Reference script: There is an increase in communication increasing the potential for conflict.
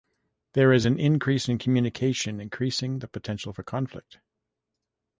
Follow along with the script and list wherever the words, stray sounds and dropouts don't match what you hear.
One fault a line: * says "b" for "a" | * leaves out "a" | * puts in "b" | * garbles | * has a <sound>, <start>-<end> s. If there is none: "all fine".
all fine